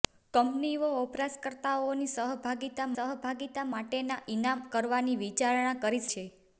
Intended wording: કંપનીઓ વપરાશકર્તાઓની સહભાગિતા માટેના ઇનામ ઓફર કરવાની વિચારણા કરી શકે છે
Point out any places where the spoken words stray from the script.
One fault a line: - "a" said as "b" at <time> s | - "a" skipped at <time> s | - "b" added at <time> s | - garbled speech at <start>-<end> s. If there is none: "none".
- "સહભાગિતા" added at 2.9 s
- "ઓફર" skipped at 4.6 s
- "શકે" skipped at 6.1 s